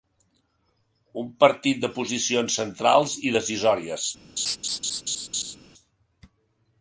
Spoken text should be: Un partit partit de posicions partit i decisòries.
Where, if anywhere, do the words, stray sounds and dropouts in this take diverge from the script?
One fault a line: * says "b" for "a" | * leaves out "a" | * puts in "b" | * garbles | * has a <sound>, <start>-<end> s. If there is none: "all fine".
* leaves out "partit"
* says "centrals" for "partit"
* has a laugh, 4.4-5.6 s